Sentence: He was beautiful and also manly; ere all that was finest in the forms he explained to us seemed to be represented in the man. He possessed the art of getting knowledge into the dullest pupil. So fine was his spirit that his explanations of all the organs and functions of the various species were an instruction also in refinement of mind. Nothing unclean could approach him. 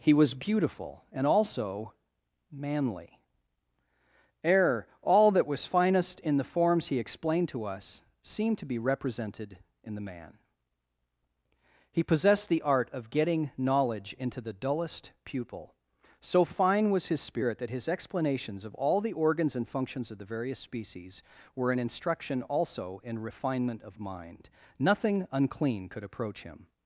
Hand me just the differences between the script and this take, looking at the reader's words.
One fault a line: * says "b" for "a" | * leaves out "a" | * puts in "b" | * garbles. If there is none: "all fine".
all fine